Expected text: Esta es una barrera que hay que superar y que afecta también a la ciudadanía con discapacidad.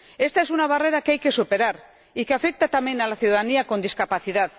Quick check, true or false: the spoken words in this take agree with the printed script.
true